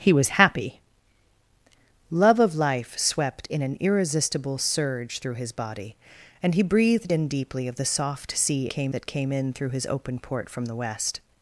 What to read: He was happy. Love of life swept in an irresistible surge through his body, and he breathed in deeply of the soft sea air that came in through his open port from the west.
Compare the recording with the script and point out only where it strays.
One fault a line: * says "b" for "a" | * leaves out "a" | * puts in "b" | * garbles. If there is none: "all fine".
* says "came" for "air"